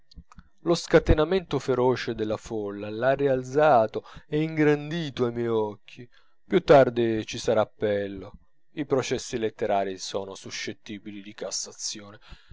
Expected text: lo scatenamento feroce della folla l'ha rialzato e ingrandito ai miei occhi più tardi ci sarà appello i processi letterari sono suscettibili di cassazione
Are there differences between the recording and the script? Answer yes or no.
no